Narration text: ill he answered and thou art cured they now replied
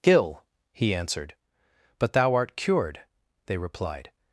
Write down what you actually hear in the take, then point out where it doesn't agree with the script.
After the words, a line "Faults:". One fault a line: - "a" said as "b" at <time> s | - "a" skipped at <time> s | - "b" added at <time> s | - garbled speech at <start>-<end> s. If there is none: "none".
ill he answered but thou art cured they replied
Faults:
- "and" said as "but" at 2.0 s
- "now" skipped at 3.6 s